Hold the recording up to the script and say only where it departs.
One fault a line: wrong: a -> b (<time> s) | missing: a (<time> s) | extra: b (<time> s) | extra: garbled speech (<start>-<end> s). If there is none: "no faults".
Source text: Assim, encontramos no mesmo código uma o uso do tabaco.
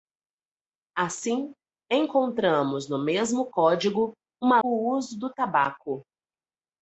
no faults